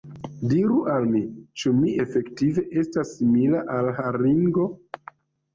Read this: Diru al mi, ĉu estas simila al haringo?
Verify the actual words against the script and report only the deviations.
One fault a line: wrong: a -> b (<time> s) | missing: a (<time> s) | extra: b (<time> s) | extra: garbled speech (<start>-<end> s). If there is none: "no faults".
extra: mi efektive (1.8 s)